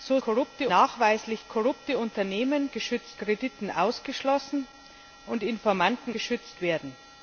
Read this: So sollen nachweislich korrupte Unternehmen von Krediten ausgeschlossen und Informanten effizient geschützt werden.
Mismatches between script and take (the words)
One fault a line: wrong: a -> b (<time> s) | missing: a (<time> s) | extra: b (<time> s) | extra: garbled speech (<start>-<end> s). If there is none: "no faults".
wrong: sollen -> korrupte (0.2 s)
wrong: von -> geschützt (2.7 s)
missing: effizient (6.1 s)